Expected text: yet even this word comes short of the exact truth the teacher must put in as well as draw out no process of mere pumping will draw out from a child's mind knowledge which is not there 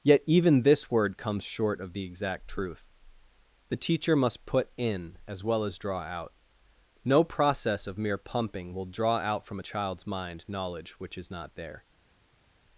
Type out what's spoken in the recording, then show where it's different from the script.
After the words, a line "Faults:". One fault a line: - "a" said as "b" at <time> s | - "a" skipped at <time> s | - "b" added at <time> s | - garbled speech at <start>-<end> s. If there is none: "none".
yet even this word comes short of the exact truth the teacher must put in as well as draw out no process of mere pumping will draw out from a child's mind knowledge which is not there
Faults:
none